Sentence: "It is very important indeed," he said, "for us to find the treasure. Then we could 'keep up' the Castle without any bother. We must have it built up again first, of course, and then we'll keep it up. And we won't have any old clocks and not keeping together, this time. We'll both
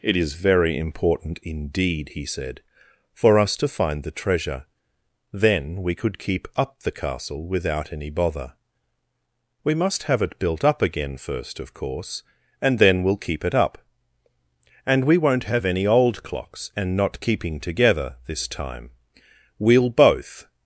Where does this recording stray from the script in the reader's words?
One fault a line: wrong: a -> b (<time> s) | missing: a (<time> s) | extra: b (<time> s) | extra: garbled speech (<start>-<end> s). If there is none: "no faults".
no faults